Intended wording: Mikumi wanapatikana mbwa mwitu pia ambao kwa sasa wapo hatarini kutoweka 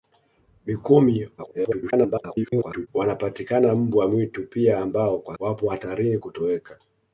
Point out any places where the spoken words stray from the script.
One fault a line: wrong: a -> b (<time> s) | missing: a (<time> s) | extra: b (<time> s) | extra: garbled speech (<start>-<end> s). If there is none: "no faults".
extra: garbled speech (1.4-2.9 s)
missing: sasa (5.4 s)